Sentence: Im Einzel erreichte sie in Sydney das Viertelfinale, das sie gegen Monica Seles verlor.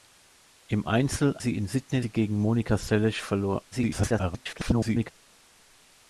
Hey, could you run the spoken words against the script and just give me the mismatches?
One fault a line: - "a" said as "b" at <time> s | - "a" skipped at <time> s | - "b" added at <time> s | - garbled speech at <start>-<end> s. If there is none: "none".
- "erreichte" skipped at 1.4 s
- "das Viertelfinale das" skipped at 2.0 s
- garbled speech at 3.7-5.1 s